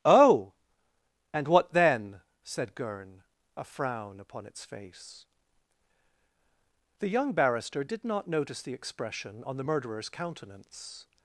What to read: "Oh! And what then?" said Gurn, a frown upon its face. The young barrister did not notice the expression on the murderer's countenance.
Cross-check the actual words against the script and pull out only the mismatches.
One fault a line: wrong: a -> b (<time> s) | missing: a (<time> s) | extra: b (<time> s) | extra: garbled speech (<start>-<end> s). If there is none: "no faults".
no faults